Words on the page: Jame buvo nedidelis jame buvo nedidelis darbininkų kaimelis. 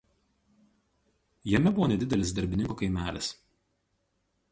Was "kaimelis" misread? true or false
false